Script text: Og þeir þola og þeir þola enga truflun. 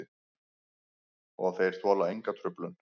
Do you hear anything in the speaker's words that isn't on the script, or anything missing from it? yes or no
yes